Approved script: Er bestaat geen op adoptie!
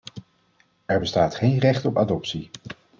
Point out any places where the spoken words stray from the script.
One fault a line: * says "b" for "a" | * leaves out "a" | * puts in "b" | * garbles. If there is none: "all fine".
* puts in "recht"